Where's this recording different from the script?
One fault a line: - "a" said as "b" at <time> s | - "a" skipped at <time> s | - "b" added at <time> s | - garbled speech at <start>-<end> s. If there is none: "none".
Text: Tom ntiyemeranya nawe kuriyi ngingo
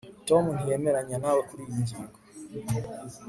none